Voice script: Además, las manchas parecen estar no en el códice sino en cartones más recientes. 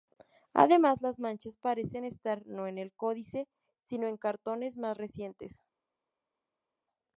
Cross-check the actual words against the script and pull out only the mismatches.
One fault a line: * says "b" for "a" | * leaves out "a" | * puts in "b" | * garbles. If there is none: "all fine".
all fine